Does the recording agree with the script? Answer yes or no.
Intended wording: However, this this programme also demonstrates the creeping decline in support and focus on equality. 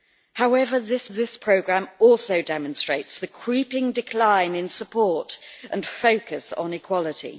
yes